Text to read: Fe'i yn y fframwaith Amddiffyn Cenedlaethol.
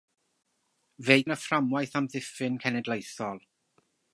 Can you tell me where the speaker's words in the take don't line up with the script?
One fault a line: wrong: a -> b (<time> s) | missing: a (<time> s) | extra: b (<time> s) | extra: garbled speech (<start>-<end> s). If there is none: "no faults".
no faults